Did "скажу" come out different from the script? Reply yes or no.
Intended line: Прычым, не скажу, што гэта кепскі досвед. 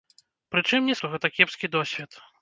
yes